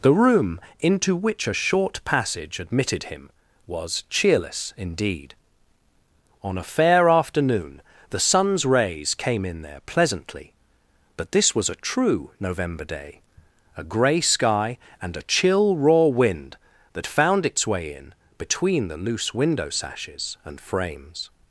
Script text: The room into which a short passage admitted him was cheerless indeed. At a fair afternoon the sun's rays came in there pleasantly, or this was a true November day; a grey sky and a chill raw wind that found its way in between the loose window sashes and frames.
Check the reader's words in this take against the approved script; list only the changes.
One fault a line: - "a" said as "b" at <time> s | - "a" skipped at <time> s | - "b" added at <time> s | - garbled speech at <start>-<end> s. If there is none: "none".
- "At" said as "On" at 6.4 s
- "or" said as "but" at 11.2 s